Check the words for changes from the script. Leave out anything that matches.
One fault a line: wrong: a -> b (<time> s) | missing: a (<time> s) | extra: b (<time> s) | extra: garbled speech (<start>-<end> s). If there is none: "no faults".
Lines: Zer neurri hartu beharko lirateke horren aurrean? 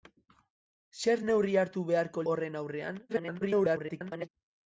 missing: lirateke (2.2 s)
extra: garbled speech (3.1-4.3 s)